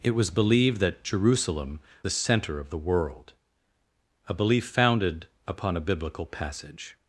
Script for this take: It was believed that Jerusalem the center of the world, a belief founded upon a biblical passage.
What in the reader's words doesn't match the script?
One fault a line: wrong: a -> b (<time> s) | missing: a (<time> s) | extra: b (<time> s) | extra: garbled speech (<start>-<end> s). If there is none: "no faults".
no faults